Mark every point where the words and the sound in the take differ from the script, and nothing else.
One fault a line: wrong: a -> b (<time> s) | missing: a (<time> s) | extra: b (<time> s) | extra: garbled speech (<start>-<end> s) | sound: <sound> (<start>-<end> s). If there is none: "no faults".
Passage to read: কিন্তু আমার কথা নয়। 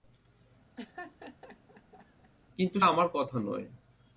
sound: laugh (0.8-2.3 s)